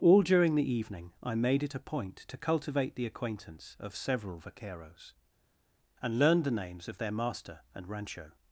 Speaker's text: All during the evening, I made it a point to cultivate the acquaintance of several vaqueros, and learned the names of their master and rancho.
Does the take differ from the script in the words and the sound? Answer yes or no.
no